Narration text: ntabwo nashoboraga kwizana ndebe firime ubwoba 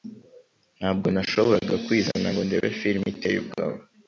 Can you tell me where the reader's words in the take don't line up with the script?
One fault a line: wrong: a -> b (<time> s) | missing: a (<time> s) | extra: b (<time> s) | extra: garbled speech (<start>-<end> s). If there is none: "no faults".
extra: ngo (2.3 s)
extra: iteye (3.1 s)